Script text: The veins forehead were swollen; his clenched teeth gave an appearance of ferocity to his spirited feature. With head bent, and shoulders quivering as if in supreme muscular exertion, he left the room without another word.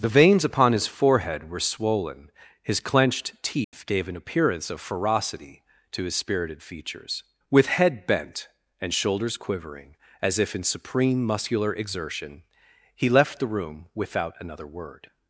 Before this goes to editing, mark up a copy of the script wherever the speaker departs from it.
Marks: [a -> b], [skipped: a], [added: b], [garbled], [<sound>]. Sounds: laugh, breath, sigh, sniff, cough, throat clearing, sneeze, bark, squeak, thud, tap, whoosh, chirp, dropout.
The veins [added: upon his] forehead were swollen; his clenched teeth [dropout] gave an appearance of ferocity to his spirited [feature. -> features] With head bent, and shoulders quivering as if in supreme muscular exertion, he left the room without another word.